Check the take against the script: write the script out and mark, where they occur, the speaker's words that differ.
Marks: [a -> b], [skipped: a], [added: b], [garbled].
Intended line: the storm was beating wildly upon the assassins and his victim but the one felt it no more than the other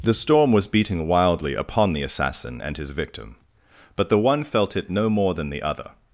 the storm was beating wildly upon the [assassins -> assassin] and his victim but the one felt it no more than the other